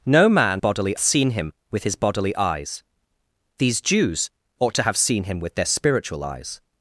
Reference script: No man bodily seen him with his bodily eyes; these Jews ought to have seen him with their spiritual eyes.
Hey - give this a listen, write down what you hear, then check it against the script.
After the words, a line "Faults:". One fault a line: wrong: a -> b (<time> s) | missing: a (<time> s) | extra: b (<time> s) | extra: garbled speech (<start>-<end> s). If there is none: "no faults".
No man bodily seen him with his bodily eyes; these Jews ought to have seen him with their spiritual eyes.
Faults:
no faults